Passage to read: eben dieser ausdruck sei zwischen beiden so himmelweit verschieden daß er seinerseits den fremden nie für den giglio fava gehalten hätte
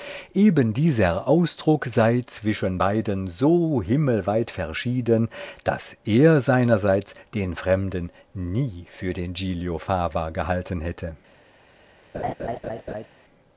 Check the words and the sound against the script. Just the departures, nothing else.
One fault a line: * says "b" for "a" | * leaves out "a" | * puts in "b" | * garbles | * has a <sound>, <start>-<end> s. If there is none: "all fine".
* has a laugh, 12.1-13.1 s